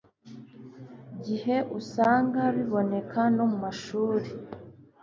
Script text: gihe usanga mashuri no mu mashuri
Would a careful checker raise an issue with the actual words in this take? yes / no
yes